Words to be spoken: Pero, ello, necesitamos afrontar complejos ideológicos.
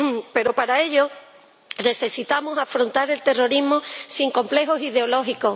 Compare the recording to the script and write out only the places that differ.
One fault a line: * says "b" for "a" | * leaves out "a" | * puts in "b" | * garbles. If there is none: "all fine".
* puts in "para"
* puts in "el terrorismo sin"